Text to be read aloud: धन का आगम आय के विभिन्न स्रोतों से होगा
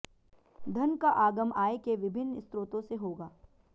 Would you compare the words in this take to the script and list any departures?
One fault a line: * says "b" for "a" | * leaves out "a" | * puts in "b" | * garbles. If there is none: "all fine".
all fine